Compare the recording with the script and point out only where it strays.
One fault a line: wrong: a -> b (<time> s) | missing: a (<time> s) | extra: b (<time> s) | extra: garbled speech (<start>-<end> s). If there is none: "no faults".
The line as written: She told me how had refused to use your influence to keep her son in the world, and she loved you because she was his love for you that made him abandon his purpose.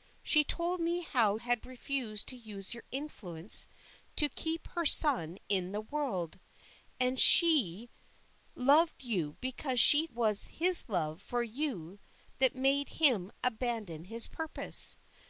no faults